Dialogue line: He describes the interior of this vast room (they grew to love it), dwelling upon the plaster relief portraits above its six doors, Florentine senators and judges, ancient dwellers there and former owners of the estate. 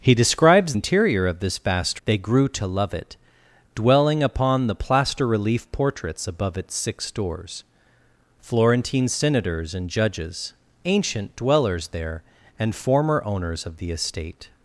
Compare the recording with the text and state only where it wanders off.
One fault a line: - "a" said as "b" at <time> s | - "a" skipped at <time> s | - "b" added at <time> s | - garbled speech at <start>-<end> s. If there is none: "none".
- "the" skipped at 0.7 s
- "room" skipped at 2.0 s